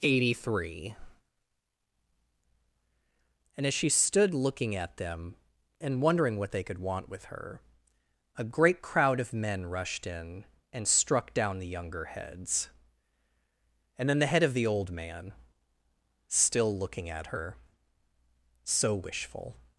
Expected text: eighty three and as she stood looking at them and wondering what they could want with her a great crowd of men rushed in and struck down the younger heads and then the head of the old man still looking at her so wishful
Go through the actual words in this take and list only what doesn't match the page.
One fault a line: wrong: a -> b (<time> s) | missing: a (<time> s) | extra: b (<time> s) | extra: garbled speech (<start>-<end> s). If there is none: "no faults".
no faults